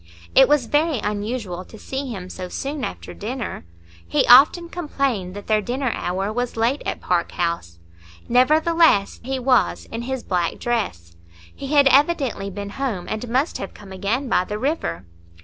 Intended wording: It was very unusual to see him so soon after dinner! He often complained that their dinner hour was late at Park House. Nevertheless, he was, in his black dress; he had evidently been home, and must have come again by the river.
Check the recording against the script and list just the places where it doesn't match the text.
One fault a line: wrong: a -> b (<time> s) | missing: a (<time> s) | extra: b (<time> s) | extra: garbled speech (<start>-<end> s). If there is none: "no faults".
no faults